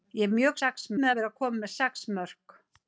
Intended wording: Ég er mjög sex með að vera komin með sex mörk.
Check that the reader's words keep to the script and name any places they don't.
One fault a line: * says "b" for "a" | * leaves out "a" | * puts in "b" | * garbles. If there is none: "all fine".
all fine